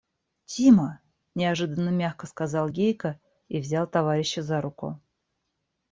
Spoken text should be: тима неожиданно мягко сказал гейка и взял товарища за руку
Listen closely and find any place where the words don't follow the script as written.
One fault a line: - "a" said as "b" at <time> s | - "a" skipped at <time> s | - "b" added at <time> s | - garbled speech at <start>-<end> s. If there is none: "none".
none